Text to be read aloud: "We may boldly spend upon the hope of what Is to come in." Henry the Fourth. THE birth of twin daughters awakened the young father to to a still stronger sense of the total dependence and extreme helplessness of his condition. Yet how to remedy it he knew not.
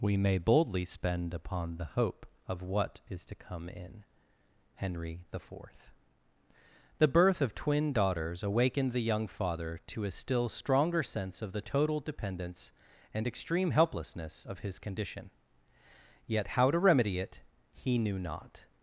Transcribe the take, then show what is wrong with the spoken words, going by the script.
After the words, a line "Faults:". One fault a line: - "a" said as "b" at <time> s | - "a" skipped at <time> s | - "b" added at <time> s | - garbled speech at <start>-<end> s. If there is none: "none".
"We may boldly spend upon the hope of what Is to come in." Henry the Fourth. THE birth of twin daughters awakened the young father to a still stronger sense of the total dependence and extreme helplessness of his condition. Yet how to remedy it he knew not.
Faults:
- "to" skipped at 10.0 s